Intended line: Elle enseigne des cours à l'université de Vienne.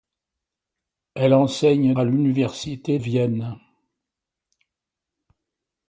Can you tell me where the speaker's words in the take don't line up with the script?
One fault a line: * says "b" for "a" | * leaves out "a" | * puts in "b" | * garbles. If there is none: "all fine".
* leaves out "des cours"
* leaves out "de"